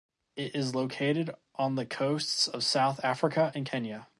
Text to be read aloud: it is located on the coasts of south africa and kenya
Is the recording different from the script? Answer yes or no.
no